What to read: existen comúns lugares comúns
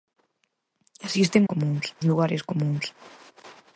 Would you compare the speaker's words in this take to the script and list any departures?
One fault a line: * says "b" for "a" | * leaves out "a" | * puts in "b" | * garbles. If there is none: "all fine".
all fine